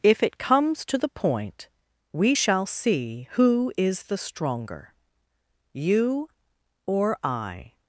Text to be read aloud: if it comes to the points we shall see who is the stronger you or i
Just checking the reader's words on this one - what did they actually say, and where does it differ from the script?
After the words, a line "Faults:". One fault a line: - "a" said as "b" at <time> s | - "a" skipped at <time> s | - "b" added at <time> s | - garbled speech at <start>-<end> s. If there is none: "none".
if it comes to the point we shall see who is the stronger you or i
Faults:
- "points" said as "point" at 1.1 s